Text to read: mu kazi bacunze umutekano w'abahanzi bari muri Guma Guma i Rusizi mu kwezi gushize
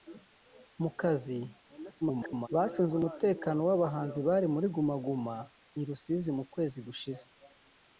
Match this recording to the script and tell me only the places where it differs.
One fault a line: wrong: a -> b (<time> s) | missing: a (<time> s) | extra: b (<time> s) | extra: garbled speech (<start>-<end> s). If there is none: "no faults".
extra: garbled speech (2.0-2.5 s)